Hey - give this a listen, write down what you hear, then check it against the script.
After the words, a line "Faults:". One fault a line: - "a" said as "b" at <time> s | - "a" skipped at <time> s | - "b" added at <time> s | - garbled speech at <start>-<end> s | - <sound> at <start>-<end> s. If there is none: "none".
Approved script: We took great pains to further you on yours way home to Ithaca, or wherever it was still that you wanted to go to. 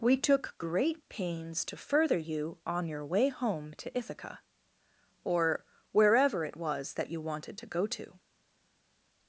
We took great pains to further you on your way home to Ithaca, or wherever it was that you wanted to go to.
Faults:
- "yours" said as "your" at 2.9 s
- "still" skipped at 7.0 s